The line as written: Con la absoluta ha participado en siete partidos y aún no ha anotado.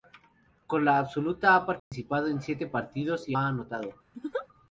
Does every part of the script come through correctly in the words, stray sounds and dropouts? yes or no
no